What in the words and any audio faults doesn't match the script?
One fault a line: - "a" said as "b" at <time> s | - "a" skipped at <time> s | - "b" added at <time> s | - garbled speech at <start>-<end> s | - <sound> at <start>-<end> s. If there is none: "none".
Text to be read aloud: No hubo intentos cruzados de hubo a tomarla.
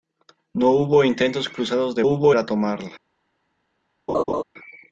- laugh at 4.1-4.4 s